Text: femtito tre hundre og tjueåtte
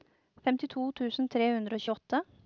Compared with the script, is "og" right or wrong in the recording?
right